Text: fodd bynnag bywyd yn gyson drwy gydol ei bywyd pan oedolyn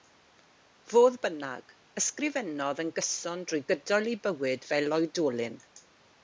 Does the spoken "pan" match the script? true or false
false